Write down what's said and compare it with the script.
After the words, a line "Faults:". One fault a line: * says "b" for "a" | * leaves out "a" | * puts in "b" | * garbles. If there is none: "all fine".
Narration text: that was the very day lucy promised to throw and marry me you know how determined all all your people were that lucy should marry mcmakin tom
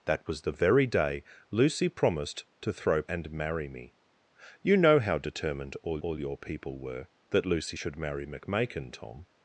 that was the very day lucy promised to throw and marry me you know how determined all all your people were that lucy should marry mcmakin tom
Faults:
all fine